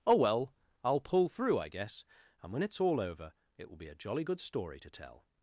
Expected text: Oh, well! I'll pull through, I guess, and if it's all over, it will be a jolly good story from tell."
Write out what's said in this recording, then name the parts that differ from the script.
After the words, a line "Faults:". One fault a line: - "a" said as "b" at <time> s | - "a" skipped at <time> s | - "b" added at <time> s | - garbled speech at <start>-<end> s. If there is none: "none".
Oh, well! I'll pull through, I guess, and when it's all over, it will be a jolly good story to tell."
Faults:
- "if" said as "when" at 2.5 s
- "from" said as "to" at 4.8 s